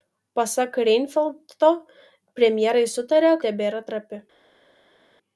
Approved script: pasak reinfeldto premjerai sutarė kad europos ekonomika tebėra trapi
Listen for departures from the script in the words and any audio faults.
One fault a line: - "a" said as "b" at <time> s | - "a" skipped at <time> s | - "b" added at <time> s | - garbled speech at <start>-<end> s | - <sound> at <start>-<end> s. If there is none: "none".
- "kad europos ekonomika" skipped at 3.3 s